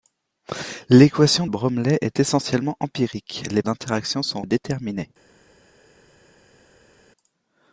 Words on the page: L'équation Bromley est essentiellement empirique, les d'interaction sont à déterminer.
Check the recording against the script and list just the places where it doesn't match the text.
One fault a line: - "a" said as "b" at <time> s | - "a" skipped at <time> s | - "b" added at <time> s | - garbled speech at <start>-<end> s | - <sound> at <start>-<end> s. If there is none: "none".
none